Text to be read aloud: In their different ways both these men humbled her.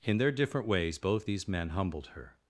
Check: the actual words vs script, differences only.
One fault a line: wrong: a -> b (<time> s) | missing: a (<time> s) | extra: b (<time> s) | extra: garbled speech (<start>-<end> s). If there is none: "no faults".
no faults